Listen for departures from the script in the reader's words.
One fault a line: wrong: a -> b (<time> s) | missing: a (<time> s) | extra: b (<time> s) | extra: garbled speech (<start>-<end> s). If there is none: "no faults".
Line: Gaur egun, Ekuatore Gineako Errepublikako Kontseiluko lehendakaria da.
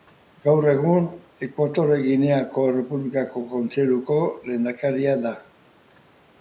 no faults